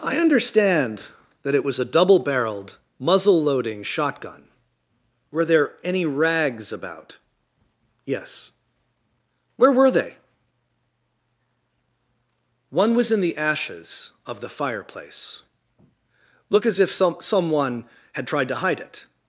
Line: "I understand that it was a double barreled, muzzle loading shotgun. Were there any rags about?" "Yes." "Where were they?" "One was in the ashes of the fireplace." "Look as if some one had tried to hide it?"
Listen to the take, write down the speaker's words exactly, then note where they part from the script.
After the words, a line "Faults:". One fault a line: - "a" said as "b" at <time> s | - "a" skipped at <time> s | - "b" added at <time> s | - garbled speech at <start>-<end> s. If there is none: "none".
"I understand that it was a double barreled, muzzle loading shotgun. Were there any rags about?" "Yes." "Where were they?" "One was in the ashes of the fireplace." "Look as if some someone had tried to hide it?"
Faults:
- "one" said as "someone" at 17.2 s